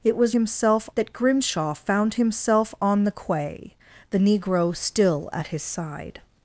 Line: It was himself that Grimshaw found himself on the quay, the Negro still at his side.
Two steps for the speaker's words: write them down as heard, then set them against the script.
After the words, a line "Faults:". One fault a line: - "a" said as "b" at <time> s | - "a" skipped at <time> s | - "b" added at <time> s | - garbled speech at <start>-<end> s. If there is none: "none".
It was himself that Grimshaw found himself on the quay, the Negro still at his side.
Faults:
none